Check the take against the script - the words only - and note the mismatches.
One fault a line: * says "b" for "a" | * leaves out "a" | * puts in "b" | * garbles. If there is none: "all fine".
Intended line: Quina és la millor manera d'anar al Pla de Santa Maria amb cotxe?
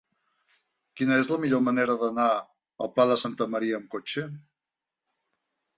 all fine